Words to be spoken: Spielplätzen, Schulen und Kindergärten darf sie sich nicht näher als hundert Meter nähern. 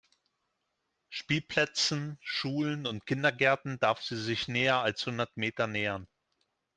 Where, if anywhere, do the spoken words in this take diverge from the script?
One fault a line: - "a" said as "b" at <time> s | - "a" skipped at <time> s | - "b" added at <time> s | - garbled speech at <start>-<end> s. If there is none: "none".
- "nicht" skipped at 4.5 s